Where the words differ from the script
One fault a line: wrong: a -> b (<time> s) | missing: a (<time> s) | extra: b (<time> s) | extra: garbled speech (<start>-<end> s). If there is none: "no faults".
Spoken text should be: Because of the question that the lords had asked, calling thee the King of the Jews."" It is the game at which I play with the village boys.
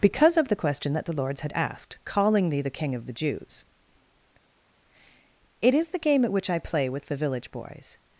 no faults